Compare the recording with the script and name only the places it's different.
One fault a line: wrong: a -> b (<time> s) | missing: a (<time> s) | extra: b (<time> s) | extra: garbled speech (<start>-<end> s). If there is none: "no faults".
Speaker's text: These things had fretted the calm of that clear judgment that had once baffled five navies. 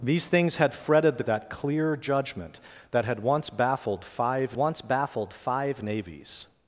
missing: calm of (1.2 s)
extra: once baffled five (4.5 s)